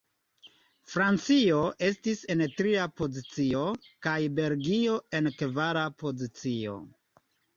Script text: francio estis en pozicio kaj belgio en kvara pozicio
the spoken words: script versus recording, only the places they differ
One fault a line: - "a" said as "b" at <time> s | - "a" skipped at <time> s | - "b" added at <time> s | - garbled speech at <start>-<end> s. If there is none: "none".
- "tria" added at 2.6 s